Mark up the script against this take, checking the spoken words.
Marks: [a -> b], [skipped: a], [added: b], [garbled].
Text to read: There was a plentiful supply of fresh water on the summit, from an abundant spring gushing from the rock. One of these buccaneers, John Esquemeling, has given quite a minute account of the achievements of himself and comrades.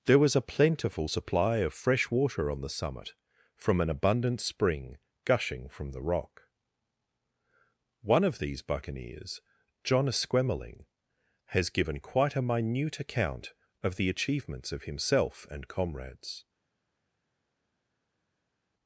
There was a plentiful supply of fresh water on the summit, from an abundant spring gushing from the rock. One of these buccaneers, John Esquemeling, has given quite a minute account of the achievements of himself and comrades.